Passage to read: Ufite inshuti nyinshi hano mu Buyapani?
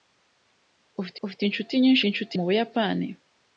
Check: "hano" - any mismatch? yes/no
yes